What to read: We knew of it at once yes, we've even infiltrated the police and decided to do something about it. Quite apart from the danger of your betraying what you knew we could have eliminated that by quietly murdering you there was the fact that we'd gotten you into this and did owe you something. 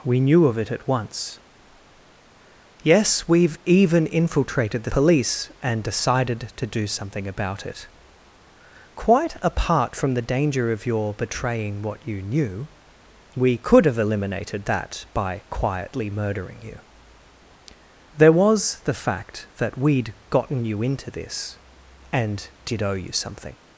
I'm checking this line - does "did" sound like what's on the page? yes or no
yes